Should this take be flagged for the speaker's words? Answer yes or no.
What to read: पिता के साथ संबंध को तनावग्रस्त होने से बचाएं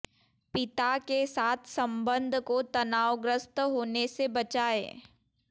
no